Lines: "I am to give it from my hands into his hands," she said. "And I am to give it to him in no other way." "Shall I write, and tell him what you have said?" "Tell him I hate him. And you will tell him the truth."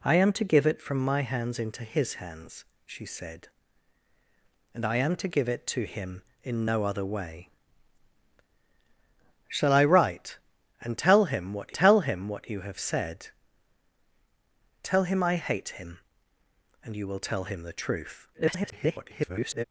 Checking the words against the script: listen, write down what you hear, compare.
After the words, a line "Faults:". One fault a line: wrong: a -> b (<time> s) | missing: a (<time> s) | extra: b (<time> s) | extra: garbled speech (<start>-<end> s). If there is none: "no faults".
"I am to give it from my hands into his hands," she said. "And I am to give it to him in no other way." "Shall I write, and tell him what tell him what you have said?" "Tell him I hate him. And you will tell him the truth." [garbled]
Faults:
extra: tell him what (11.7 s)
extra: garbled speech (18.3-19.6 s)